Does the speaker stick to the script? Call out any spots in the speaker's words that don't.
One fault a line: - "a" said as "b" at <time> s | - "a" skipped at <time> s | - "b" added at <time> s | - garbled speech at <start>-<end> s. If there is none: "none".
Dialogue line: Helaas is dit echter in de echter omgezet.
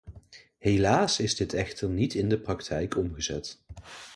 - "niet" added at 1.9 s
- "echter" said as "praktijk" at 2.4 s